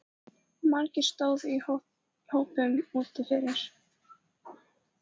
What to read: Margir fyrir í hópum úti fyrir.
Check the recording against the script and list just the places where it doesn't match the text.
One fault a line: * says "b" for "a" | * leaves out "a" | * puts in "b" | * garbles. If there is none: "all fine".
* says "stóðu" for "fyrir"